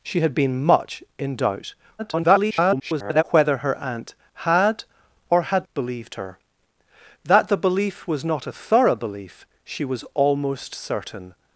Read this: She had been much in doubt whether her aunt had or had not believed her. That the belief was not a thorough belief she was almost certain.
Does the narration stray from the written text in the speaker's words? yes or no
yes